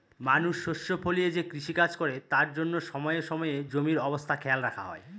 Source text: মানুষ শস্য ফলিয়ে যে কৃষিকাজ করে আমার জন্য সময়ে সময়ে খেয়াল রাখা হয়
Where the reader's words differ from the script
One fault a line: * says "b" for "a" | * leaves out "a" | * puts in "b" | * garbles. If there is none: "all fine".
* says "তার" for "আমার"
* puts in "জমির অবস্থা"